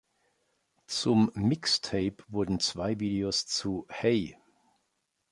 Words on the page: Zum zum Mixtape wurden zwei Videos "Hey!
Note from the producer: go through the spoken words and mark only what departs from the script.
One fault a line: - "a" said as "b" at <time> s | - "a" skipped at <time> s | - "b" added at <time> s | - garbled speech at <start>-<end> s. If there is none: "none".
- "zum" skipped at 1.3 s
- "zu" added at 3.4 s